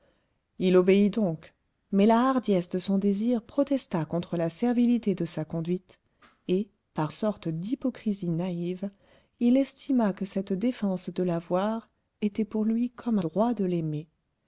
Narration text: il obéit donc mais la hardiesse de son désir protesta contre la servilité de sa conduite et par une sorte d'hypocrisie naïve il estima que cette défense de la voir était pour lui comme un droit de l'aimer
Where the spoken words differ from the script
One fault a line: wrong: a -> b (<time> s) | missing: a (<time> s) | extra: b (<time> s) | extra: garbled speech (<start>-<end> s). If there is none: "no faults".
missing: une (7.1 s)
missing: un (13.2 s)